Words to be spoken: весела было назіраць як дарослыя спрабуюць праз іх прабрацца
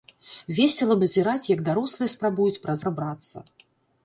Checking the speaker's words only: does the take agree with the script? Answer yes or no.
no